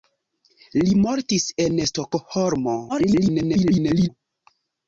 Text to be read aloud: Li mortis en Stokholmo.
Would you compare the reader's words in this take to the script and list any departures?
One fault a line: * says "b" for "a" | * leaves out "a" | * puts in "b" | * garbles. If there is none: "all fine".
* garbles